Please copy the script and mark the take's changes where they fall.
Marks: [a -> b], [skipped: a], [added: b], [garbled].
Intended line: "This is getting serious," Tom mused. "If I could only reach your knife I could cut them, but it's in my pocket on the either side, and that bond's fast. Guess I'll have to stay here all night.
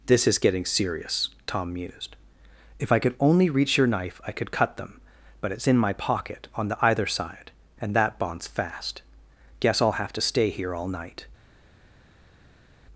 "This is getting serious," Tom mused. "If I could only reach your knife I could cut them, but it's in my pocket on the either side, and that bond's fast. Guess I'll have to stay here all night.